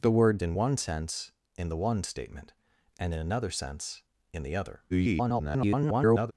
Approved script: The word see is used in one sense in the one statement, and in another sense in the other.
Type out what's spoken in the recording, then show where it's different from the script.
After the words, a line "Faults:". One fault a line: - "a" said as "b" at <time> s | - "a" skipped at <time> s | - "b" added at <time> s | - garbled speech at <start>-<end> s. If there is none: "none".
The word in one sense in the one statement, and in another sense in the other. [garbled]
Faults:
- "see is used" skipped at 0.4 s
- garbled speech at 4.9-6.3 s